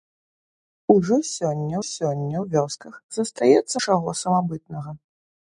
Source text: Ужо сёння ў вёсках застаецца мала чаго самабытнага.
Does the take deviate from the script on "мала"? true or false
true